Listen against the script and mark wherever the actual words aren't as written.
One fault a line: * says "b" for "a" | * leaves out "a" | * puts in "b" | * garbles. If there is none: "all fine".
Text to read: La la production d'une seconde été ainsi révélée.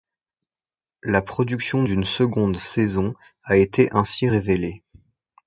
* leaves out "la"
* puts in "saison a"